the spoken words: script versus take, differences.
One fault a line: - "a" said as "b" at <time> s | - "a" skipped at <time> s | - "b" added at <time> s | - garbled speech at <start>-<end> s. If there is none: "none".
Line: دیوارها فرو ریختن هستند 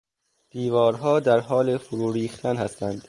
- "در حال" added at 1.2 s